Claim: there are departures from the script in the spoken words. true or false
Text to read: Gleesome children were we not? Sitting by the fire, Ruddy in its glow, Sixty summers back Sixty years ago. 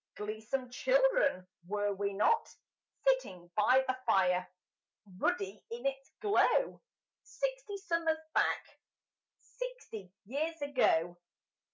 false